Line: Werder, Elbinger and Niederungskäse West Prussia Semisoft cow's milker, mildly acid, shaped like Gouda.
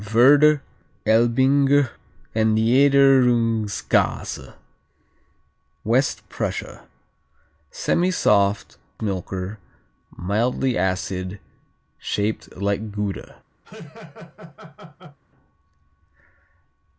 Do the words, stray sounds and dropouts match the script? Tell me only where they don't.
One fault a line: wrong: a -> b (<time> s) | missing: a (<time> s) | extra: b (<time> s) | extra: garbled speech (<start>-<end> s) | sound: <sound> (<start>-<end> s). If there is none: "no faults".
missing: cow's (8.8 s)
sound: laugh (13.6-15.2 s)